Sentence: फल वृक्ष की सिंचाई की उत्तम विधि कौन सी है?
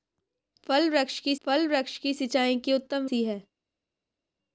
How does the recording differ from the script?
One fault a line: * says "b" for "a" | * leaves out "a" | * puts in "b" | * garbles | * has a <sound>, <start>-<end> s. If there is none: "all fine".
* puts in "फल वृक्ष की"
* leaves out "विधि कौन"